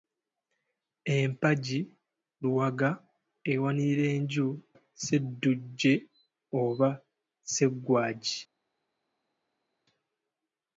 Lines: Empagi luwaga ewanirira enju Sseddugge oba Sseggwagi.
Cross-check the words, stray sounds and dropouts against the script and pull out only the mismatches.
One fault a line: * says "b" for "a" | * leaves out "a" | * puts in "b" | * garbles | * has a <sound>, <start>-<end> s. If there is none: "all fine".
all fine